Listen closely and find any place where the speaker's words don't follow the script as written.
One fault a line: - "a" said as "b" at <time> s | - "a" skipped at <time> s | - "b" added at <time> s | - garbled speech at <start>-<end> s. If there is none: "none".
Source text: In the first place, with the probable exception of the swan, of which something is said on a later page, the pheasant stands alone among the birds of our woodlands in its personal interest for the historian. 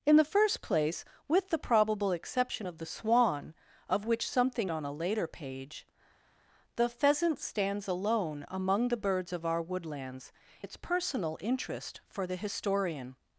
- "is said" skipped at 4.7 s
- "in" skipped at 10.3 s